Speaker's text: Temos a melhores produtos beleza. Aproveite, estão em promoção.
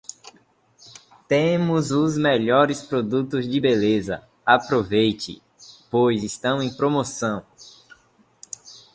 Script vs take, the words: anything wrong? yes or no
yes